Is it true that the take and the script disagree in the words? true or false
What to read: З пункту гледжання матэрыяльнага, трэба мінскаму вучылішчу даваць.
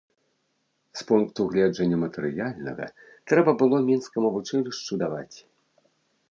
true